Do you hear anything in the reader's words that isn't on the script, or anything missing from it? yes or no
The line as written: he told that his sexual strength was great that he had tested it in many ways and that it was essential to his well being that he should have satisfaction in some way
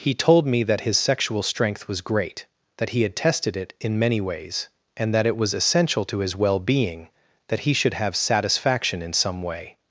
yes